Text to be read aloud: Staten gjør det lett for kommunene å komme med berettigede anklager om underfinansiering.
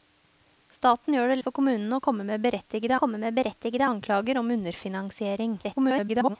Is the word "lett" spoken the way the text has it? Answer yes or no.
no